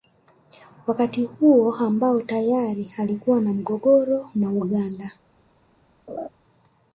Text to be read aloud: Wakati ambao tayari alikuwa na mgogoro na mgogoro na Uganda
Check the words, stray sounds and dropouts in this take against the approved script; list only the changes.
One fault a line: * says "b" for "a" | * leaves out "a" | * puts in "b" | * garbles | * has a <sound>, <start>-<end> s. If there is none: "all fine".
* puts in "huo"
* leaves out "mgogoro na"
* has a laugh, 6.1-6.3 s